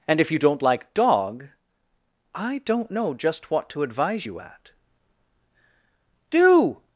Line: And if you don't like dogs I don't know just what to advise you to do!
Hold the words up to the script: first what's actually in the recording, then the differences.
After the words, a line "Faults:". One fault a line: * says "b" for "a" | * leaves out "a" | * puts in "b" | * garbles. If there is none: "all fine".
And if you don't like dog I don't know just what to advise you at do!
Faults:
* says "dog" for "dogs"
* says "at" for "to"